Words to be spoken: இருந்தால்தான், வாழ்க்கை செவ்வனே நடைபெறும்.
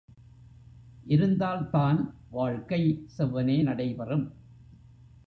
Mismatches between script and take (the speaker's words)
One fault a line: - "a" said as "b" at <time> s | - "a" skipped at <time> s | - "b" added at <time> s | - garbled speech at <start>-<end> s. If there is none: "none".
none